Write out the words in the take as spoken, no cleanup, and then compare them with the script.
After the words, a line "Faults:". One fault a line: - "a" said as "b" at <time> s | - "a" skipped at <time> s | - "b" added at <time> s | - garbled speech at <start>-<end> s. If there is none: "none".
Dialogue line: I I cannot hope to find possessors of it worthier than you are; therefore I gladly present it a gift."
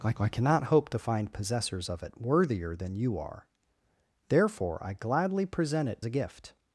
I I cannot hope to find possessors of it worthier than you are; therefore I gladly present it a gift."
Faults:
none